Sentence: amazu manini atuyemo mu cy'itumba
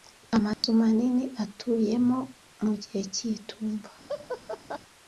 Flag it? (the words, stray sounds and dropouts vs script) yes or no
yes